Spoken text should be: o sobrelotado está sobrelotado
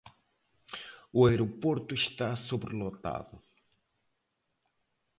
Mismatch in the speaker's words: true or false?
true